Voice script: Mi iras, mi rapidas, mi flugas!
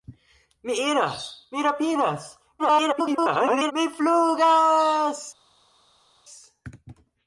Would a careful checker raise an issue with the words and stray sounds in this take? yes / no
yes